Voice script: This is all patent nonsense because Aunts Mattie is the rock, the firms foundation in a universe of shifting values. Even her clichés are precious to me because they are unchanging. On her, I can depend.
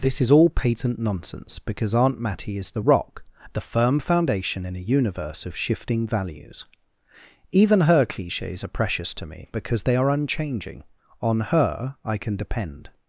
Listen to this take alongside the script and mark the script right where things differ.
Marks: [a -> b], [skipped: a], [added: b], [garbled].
This is all patent nonsense because [Aunts -> Aunt] Mattie is the rock, the [firms -> firm] foundation in a universe of shifting values. Even her clichés are precious to me because they are unchanging. On her, I can depend.